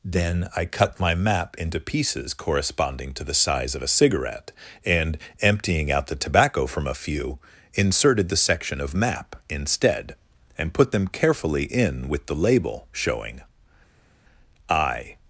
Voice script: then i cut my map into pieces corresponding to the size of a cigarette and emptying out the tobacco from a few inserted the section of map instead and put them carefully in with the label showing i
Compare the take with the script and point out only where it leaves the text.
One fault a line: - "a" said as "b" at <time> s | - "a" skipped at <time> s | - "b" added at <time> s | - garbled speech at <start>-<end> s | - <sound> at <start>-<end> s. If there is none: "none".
none